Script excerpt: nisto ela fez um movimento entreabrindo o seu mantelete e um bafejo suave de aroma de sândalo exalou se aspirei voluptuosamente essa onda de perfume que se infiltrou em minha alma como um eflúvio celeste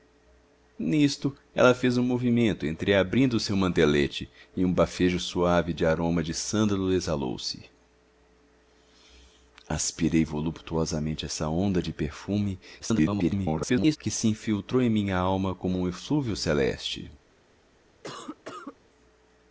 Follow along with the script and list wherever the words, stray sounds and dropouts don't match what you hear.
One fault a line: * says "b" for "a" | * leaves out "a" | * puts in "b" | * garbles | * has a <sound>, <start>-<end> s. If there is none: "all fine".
* garbles
* has a cough, 18.0-18.8 s